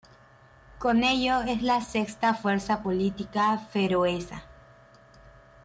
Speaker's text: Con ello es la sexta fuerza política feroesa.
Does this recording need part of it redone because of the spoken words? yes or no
no